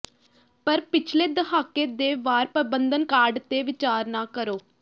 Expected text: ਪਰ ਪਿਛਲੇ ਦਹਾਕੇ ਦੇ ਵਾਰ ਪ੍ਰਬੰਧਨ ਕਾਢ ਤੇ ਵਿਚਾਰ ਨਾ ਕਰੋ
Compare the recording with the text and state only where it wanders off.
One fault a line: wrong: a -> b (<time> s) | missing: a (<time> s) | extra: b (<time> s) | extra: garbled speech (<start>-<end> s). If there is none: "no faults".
no faults